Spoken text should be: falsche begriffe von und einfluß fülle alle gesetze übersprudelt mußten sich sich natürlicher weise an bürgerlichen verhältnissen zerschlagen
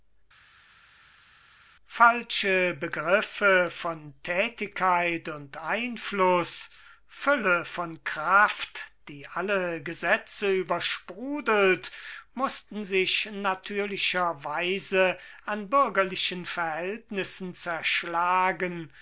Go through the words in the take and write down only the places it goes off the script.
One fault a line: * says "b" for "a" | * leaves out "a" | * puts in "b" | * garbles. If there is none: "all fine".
* puts in "thätigkeit"
* puts in "von kraft die"
* leaves out "sich"